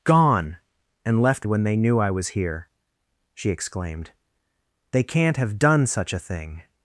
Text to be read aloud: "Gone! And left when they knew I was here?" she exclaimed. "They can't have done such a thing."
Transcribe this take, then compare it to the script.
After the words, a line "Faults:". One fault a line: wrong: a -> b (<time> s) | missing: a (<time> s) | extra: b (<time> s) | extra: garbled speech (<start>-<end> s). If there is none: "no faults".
"Gone! And left when they knew I was here?" she exclaimed. "They can't have done such a thing."
Faults:
no faults